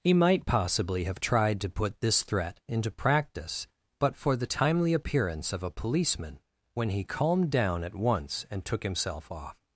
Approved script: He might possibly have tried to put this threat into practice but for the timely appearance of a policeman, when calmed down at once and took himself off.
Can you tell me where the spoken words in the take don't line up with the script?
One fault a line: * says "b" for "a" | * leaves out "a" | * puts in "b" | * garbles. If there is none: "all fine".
* puts in "he"